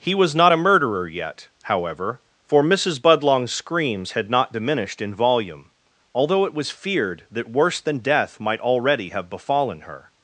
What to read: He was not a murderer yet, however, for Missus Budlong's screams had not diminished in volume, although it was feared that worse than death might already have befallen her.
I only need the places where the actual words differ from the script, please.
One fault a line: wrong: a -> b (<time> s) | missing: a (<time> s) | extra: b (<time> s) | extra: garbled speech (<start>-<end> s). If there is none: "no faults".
no faults